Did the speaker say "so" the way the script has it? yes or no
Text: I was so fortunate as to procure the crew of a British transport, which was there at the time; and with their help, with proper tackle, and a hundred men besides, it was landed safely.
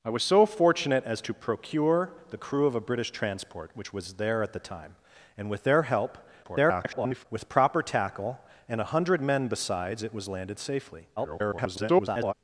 yes